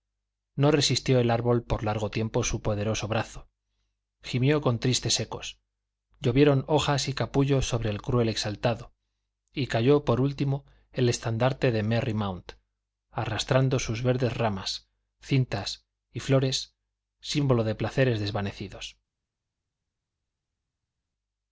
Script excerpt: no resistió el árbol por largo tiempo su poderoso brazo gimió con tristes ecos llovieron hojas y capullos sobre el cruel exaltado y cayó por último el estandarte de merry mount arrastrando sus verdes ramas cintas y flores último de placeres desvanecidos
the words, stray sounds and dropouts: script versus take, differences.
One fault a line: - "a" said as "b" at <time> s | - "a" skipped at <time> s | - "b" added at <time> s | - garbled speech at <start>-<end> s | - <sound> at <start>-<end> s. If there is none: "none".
- "último" said as "símbolo" at 17.2 s